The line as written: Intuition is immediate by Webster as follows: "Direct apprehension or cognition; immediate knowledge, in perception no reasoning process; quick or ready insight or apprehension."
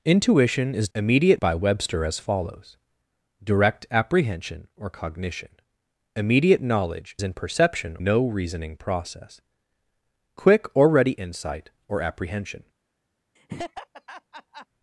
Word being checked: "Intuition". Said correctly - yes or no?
yes